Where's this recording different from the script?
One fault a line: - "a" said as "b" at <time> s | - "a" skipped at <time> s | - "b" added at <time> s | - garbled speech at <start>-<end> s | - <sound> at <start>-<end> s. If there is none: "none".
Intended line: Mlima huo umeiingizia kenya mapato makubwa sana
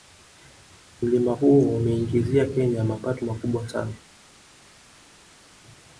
none